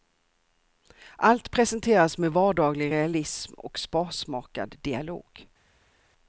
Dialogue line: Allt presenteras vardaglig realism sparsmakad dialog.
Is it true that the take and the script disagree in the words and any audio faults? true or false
true